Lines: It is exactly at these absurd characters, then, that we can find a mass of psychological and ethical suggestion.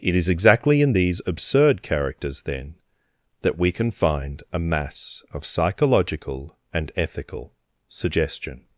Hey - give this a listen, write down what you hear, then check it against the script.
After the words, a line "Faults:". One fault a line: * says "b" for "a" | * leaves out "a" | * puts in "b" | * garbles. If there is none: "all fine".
It is exactly in these absurd characters, then, that we can find a mass of psychological and ethical suggestion.
Faults:
* says "in" for "at"